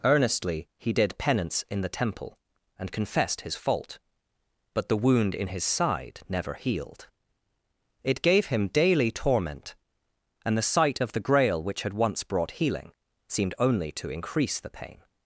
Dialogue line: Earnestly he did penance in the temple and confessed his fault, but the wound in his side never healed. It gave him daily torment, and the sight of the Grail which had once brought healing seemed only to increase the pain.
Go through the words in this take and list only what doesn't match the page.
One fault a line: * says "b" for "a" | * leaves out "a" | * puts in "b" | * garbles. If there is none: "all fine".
all fine